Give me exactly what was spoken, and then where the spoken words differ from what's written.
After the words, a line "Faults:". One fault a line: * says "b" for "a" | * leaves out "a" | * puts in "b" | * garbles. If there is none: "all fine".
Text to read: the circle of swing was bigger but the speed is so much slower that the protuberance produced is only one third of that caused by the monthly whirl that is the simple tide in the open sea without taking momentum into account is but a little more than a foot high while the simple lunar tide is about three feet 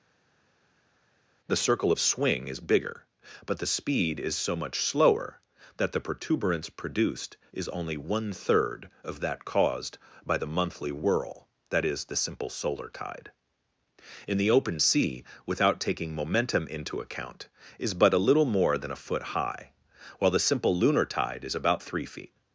the circle of swing is bigger but the speed is so much slower that the protuberance produced is only one third of that caused by the monthly whirl that is the simple solar tide in the open sea without taking momentum into account is but a little more than a foot high while the simple lunar tide is about three feet
Faults:
* says "is" for "was"
* puts in "solar"